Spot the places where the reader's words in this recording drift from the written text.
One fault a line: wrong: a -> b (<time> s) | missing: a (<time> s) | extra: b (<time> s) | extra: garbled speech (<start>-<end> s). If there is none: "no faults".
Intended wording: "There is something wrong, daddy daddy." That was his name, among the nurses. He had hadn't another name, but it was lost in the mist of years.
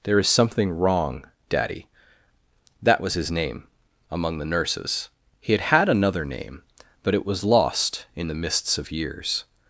missing: daddy (1.9 s)
wrong: hadn't -> had (5.6 s)
wrong: mist -> mists (8.3 s)